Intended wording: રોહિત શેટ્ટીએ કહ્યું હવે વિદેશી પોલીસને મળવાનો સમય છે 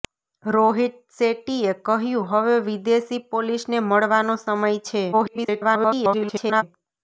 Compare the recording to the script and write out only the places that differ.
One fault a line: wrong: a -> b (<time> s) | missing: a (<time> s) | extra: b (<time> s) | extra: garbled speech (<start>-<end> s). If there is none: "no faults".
extra: garbled speech (5.1-6.6 s)